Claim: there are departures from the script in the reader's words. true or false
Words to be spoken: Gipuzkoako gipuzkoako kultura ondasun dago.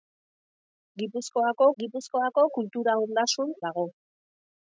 false